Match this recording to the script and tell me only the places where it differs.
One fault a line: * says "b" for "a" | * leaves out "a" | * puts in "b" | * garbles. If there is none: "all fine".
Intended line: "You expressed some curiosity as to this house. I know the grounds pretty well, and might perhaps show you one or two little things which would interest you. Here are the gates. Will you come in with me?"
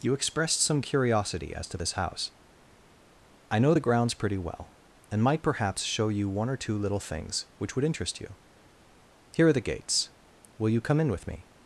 all fine